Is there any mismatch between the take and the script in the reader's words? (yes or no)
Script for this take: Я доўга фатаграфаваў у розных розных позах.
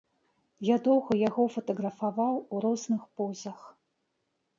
yes